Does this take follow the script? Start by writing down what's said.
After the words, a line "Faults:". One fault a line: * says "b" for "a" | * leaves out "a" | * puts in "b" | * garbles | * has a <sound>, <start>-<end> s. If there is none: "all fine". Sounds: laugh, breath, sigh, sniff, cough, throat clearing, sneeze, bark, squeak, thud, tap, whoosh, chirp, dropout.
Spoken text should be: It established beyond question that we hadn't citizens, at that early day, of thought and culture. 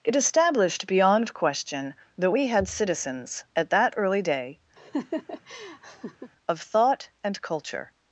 It established beyond question that we had citizens, at that early day, of thought and culture.
Faults:
* says "had" for "hadn't"
* has a laugh, 4.8-6.3 s